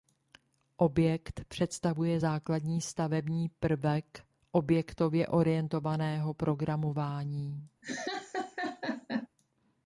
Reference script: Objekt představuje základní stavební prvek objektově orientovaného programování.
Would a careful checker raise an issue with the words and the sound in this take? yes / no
yes